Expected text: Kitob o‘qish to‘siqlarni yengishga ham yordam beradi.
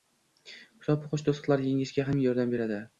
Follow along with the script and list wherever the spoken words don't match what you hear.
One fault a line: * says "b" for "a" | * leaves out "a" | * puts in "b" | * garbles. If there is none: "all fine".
all fine